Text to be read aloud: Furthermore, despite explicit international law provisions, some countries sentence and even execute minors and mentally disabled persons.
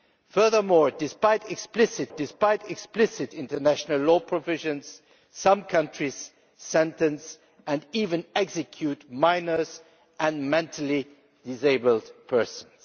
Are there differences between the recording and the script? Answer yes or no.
yes